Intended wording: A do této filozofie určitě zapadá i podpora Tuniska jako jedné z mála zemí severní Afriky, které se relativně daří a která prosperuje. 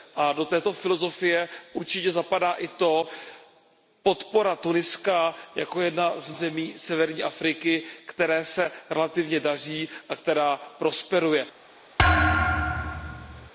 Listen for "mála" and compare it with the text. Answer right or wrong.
wrong